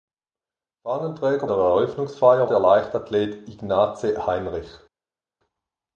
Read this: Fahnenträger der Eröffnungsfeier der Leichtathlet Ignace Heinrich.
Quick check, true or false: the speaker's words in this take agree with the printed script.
true